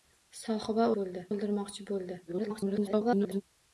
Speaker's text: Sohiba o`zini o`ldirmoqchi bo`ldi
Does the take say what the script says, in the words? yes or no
no